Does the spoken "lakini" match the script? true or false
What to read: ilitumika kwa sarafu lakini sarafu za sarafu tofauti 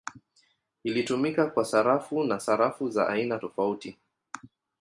false